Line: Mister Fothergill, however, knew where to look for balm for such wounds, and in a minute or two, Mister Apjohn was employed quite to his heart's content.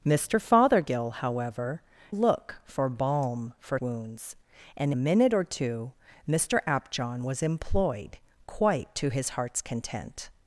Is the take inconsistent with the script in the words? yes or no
yes